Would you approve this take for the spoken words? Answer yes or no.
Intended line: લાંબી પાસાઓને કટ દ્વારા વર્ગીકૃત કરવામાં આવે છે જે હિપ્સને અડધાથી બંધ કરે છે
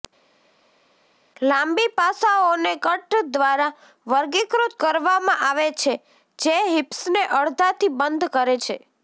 yes